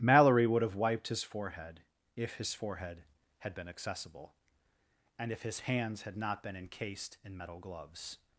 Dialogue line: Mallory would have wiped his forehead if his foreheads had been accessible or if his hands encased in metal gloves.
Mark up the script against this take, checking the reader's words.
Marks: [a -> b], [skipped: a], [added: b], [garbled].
Mallory would have wiped his forehead if his [foreheads -> forehead] had been accessible [or -> and] if his hands [added: had not been] encased in metal gloves.